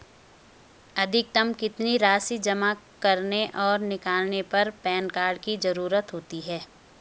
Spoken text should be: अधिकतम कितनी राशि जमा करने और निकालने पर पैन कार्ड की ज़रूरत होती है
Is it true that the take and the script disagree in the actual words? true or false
false